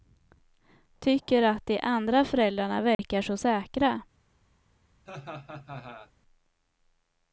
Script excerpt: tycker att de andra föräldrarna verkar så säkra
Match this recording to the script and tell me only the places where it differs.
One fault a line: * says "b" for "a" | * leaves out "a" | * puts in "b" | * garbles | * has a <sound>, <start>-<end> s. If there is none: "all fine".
* has a dropout, 2.9-3.0 s
* has a laugh, 5.1-6.1 s